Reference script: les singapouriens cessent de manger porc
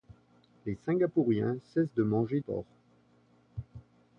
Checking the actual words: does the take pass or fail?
pass